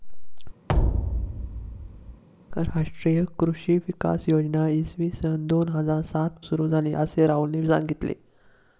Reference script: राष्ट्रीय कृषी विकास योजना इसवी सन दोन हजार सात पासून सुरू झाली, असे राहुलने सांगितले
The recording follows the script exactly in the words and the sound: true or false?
false